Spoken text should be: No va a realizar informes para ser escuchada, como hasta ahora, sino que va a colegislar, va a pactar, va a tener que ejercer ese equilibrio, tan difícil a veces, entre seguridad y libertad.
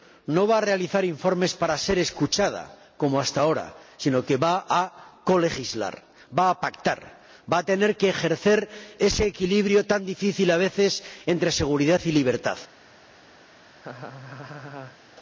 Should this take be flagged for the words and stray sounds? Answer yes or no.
yes